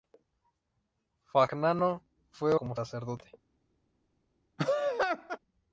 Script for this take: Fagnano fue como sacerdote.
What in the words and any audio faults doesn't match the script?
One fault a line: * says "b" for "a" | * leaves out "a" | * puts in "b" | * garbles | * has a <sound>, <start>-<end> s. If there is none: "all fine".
* has a laugh, 4.6-5.4 s